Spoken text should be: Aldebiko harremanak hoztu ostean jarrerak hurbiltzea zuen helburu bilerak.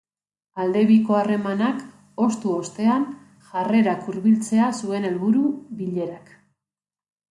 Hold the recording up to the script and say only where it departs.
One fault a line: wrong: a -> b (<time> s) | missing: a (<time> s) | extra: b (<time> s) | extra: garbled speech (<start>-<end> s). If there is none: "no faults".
no faults